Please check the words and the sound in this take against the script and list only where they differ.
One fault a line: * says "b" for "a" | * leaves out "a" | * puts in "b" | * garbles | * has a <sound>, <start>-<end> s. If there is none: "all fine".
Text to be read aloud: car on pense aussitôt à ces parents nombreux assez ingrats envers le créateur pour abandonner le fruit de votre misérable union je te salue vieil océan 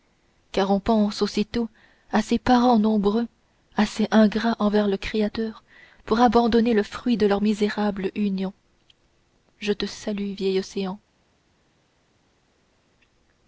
* says "leur" for "votre"